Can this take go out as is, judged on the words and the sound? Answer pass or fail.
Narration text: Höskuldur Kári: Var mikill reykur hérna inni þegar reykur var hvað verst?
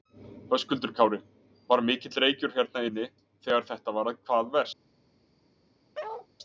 fail